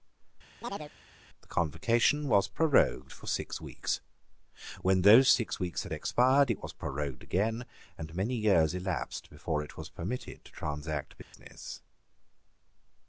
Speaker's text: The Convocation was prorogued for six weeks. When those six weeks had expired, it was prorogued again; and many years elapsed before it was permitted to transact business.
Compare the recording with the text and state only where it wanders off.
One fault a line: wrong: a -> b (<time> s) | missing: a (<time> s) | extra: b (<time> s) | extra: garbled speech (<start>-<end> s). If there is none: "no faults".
no faults